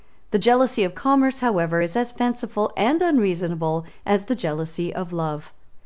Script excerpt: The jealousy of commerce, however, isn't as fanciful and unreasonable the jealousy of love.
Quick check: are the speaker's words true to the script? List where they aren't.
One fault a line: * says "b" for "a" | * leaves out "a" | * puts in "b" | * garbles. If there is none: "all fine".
* says "is" for "isn't"
* puts in "as"